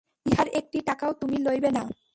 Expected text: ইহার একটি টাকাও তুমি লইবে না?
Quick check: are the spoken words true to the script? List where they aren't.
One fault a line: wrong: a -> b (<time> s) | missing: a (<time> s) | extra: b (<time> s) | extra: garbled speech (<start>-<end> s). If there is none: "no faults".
no faults